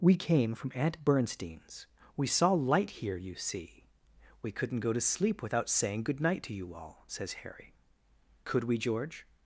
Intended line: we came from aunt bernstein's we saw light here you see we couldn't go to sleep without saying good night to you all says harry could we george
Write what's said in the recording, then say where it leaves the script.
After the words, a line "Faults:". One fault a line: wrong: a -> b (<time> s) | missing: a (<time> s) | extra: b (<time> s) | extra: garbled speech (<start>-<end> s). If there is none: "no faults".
we came from aunt bernstein's we saw light here you see we couldn't go to sleep without saying good night to you all says harry could we george
Faults:
no faults